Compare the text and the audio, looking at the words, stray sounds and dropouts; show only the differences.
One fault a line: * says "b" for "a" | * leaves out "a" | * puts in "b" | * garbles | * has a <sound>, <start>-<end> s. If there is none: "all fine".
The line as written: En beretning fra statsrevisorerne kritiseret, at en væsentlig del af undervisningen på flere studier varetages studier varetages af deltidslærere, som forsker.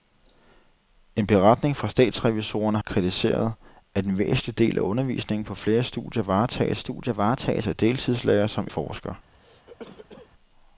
* has a cough, 9.3-10.3 s